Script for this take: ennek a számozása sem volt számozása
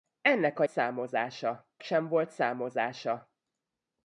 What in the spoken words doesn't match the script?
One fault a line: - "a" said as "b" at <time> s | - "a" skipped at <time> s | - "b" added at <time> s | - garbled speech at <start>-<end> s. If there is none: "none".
none